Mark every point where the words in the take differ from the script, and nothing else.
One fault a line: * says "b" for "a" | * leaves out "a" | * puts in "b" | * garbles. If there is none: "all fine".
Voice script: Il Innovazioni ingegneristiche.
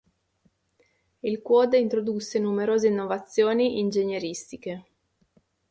* puts in "Quad introdusse numerose"